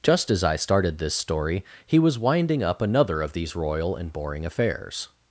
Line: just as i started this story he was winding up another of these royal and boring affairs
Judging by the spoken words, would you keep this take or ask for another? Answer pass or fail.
pass